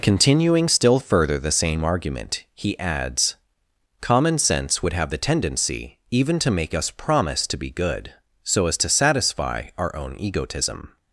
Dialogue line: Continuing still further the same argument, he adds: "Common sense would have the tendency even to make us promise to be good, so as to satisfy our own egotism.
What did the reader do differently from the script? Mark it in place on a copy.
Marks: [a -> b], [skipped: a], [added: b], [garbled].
Continuing still further the same argument, he adds: "Common sense would have the tendency even to make us promise to be good, so as to satisfy our own egotism.